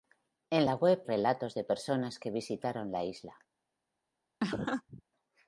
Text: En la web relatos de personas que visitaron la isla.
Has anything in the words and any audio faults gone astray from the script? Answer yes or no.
yes